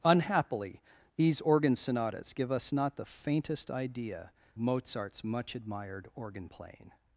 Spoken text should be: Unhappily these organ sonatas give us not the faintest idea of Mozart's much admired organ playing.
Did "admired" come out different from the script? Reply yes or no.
no